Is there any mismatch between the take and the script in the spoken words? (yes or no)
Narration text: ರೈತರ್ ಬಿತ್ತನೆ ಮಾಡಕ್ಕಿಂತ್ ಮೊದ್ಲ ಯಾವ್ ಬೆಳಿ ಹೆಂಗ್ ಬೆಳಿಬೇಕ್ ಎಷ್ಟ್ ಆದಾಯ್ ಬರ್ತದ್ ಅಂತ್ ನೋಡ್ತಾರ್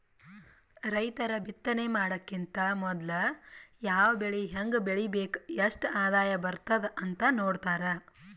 no